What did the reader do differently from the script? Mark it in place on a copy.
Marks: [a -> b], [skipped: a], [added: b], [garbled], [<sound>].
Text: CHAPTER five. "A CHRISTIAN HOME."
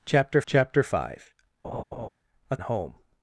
CHAPTER [added: chapter] five. [laugh] "A [skipped: CHRISTIAN] HOME."